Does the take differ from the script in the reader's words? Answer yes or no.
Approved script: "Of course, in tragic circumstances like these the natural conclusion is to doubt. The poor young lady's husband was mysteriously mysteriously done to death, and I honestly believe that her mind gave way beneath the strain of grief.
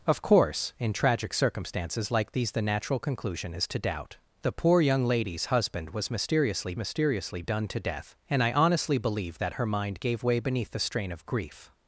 no